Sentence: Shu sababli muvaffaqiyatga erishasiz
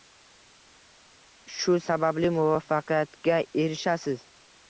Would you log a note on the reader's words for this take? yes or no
no